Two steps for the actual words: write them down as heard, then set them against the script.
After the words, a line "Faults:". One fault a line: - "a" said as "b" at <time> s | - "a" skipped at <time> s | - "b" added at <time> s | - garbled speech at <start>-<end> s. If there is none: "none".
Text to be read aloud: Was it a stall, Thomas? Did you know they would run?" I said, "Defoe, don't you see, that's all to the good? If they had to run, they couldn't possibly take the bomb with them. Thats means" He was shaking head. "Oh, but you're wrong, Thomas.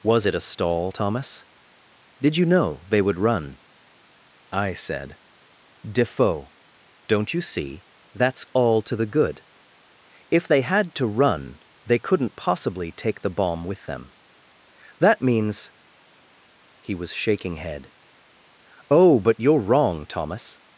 Was it a stall, Thomas? Did you know they would run?" I said, "Defoe, don't you see, that's all to the good? If they had to run, they couldn't possibly take the bomb with them. That means" He was shaking head. "Oh, but you're wrong, Thomas.
Faults:
- "Thats" said as "That" at 15.0 s